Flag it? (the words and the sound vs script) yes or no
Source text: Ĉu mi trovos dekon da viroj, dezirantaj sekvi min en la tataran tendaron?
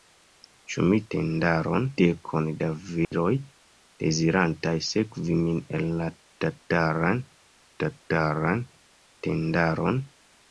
yes